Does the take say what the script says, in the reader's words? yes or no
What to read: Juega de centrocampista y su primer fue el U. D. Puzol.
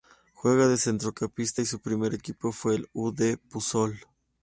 no